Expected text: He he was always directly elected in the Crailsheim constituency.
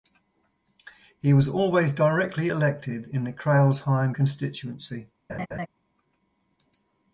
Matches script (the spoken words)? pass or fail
fail